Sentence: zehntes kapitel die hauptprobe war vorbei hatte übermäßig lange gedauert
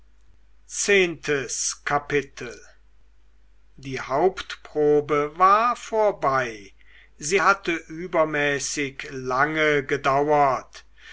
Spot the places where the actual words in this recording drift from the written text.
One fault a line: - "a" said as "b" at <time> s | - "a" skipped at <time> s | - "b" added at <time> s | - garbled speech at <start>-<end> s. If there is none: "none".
- "sie" added at 7.2 s